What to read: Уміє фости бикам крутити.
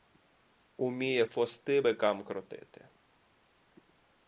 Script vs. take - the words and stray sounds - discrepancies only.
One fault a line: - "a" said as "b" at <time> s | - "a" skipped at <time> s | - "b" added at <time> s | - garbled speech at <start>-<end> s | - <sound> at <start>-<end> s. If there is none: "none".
none